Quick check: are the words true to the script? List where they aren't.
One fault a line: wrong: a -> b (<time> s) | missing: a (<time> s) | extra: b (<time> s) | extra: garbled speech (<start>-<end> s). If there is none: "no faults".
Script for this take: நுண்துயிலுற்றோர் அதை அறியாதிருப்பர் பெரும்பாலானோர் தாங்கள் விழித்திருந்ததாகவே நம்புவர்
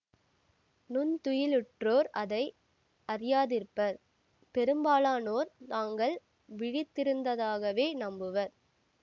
no faults